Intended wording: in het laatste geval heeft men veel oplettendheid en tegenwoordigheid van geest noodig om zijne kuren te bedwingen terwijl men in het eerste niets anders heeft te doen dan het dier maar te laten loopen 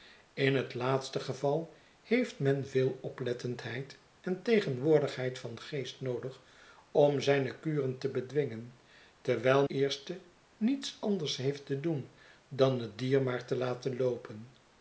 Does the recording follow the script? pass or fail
fail